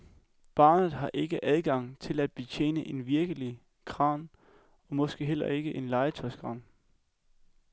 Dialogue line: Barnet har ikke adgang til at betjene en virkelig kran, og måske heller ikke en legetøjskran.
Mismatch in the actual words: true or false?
false